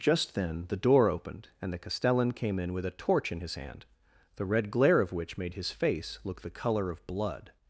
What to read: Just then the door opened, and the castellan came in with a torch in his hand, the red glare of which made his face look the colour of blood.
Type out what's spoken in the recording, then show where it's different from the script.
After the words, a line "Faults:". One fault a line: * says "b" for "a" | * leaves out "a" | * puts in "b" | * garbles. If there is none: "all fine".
Just then the door opened, and the castellan came in with a torch in his hand, the red glare of which made his face look the colour of blood.
Faults:
all fine